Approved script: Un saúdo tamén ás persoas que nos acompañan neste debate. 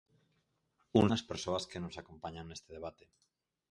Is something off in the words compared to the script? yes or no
yes